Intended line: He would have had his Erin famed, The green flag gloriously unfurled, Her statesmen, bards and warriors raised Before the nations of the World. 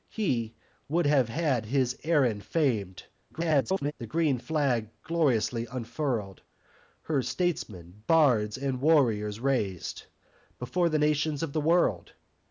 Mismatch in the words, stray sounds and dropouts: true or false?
true